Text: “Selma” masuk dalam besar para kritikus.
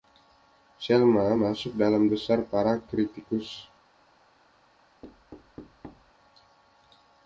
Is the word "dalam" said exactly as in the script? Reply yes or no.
yes